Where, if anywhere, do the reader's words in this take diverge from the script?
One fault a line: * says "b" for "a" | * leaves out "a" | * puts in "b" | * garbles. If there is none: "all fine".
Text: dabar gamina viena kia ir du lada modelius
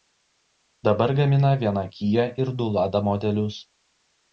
all fine